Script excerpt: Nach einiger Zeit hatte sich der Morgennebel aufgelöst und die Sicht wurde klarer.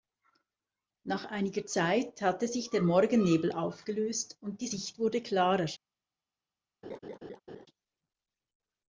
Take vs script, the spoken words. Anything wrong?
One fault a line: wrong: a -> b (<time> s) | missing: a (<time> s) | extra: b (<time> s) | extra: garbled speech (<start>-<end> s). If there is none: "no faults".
no faults